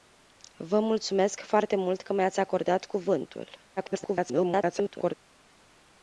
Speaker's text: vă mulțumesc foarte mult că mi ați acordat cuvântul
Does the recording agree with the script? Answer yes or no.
no